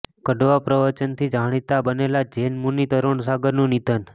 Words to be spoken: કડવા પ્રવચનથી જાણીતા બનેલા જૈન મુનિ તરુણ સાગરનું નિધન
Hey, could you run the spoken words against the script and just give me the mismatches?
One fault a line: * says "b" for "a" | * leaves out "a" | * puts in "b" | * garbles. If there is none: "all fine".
all fine